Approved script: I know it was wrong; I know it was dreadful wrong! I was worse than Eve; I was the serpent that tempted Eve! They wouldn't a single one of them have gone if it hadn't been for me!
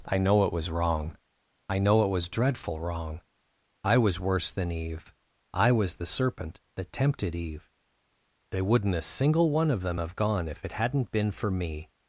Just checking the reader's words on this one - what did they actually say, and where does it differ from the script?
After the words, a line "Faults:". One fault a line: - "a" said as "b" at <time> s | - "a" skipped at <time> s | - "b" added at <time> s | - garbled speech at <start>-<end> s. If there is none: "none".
I know it was wrong; I know it was dreadful wrong! I was worse than Eve; I was the serpent that tempted Eve! They wouldn't a single one of them have gone if it hadn't been for me!
Faults:
none